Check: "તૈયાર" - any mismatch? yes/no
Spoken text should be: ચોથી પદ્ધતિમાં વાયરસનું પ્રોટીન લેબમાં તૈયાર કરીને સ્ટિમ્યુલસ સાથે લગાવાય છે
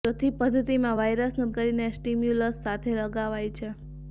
yes